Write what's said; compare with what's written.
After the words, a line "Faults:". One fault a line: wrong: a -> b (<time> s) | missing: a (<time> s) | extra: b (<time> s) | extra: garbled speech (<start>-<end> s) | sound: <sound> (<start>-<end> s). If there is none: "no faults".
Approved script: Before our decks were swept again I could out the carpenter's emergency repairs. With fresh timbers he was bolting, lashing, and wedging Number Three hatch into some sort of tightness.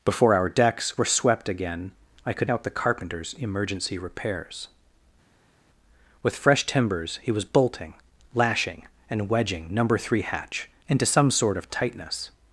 Before our decks were swept again I could out the carpenter's emergency repairs. With fresh timbers he was bolting, lashing, and wedging Number Three hatch into some sort of tightness.
Faults:
no faults